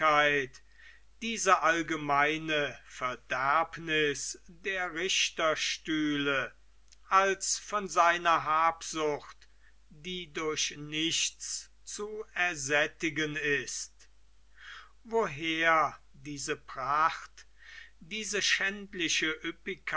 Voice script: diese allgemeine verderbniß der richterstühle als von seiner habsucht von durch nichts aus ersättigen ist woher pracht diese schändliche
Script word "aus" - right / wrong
wrong